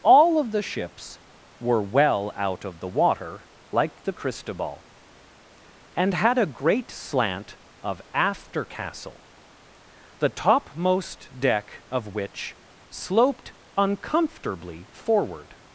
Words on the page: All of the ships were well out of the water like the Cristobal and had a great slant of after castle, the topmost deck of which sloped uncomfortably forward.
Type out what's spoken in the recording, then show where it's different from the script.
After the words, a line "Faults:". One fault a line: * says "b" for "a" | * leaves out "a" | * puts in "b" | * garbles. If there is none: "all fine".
All of the ships were well out of the water like the Cristobal and had a great slant of after castle, the topmost deck of which sloped uncomfortably forward.
Faults:
all fine